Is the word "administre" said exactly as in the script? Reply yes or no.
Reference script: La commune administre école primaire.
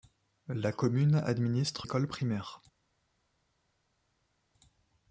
yes